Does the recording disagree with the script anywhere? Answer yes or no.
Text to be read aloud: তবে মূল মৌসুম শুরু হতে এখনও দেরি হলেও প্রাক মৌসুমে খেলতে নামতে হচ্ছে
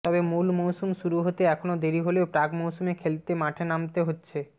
yes